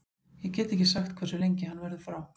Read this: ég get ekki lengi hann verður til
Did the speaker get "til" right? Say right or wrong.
wrong